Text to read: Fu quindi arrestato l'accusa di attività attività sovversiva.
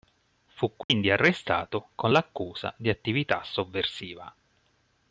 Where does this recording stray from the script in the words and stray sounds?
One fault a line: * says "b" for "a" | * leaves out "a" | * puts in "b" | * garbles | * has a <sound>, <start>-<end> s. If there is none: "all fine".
* has a dropout, 0.8-0.9 s
* puts in "con"
* leaves out "attività"